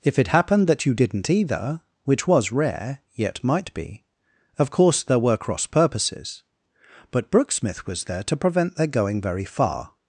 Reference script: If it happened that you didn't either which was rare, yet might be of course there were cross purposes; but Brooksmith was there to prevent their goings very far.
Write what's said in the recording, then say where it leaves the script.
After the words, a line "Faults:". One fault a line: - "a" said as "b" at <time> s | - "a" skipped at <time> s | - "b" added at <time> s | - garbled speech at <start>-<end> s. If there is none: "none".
If it happened that you didn't either which was rare, yet might be of course there were cross purposes; but Brooksmith was there to prevent their going very far.
Faults:
- "goings" said as "going" at 8.9 s